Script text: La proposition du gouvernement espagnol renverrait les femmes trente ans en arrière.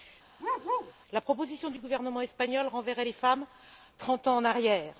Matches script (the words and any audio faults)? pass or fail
fail